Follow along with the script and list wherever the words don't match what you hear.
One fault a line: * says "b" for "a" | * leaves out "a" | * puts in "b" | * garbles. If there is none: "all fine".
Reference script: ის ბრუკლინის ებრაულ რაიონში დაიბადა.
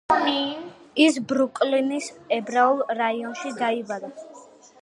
all fine